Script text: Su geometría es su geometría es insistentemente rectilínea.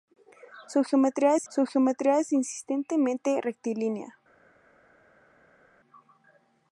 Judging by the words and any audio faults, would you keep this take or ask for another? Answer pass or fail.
pass